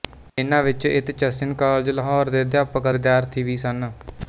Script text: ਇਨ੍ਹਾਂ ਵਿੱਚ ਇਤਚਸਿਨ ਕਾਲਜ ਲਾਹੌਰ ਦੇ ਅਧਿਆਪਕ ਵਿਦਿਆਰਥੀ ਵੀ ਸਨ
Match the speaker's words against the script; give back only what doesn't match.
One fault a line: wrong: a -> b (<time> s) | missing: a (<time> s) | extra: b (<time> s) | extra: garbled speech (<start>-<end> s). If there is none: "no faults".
no faults